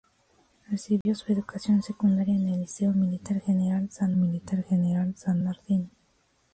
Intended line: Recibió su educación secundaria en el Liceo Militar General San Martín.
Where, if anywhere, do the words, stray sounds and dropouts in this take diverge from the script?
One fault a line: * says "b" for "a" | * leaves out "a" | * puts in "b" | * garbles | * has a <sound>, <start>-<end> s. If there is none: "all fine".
* has a dropout, 1.0-1.1 s
* puts in "Militar General San"